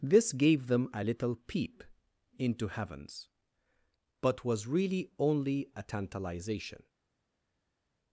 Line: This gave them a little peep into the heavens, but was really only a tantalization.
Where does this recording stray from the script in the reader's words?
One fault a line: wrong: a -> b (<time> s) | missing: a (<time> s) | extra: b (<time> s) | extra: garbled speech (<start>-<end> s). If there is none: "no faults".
missing: the (2.7 s)